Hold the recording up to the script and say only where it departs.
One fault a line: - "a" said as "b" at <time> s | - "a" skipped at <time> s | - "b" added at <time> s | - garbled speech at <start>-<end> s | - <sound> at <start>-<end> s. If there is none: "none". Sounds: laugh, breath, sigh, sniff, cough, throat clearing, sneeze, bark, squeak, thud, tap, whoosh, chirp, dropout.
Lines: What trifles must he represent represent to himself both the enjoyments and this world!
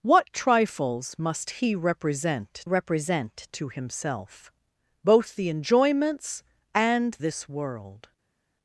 none